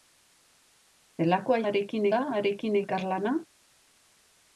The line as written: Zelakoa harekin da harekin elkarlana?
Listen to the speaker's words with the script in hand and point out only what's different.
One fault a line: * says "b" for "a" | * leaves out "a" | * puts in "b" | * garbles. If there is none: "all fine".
all fine